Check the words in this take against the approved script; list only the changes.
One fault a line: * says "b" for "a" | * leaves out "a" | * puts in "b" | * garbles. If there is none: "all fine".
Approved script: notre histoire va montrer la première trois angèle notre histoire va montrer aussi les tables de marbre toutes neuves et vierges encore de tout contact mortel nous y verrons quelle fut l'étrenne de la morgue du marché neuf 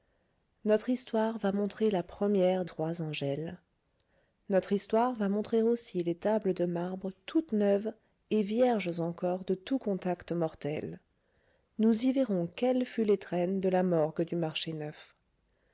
all fine